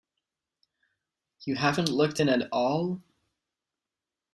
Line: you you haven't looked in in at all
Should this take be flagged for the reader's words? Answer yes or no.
yes